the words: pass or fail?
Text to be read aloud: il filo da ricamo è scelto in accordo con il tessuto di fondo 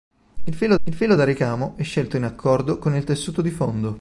fail